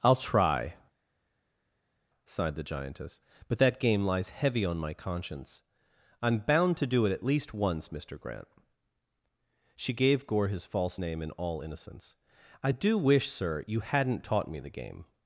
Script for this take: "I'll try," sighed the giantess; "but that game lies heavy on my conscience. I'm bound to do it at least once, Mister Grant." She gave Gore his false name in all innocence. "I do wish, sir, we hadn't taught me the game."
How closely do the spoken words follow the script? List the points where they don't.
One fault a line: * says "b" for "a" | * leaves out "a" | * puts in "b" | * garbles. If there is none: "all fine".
* says "you" for "we"